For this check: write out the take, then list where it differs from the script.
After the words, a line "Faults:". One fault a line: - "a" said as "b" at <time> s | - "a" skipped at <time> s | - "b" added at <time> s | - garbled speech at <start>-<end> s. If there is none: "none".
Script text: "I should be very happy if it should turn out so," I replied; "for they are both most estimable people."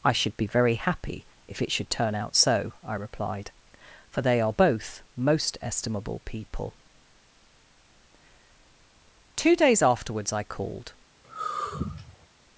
"I should be very happy if it should turn out so," I replied; "for they are both most estimable people." Two days afterwards, I called
Faults:
- "Two days afterwards I called" added at 9.4 s